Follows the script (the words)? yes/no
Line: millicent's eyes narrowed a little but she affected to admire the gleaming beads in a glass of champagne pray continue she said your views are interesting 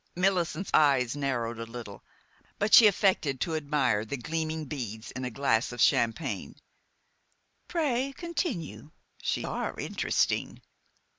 no